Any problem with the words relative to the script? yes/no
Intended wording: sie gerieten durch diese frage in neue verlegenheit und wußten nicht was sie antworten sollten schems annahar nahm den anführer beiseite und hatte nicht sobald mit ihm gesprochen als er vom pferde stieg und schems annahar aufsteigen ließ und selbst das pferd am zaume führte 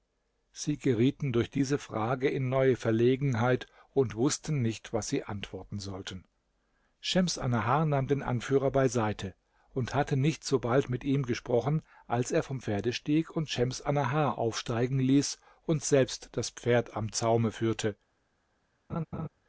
no